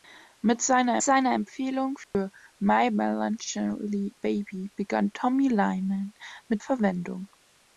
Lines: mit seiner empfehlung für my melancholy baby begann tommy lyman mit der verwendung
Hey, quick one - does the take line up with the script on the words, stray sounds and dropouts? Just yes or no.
no